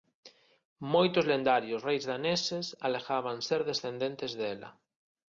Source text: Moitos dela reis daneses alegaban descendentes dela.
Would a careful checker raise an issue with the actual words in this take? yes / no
yes